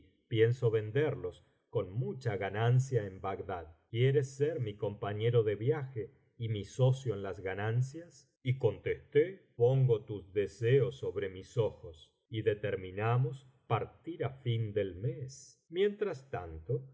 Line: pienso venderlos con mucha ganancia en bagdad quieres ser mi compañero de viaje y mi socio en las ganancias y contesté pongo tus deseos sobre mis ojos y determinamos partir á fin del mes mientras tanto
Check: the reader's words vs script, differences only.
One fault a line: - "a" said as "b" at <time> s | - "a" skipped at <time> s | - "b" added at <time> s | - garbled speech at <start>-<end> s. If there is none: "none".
none